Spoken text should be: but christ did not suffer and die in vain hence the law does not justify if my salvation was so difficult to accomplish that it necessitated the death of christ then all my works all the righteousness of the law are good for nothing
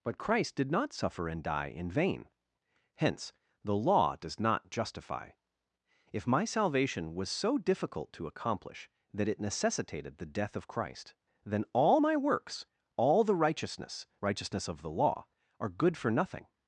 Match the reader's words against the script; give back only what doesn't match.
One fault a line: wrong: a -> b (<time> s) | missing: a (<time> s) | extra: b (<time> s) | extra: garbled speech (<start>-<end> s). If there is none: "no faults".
extra: righteousness (14.2 s)